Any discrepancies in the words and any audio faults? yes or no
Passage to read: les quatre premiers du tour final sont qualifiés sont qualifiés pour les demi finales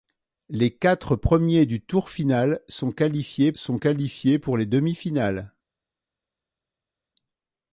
no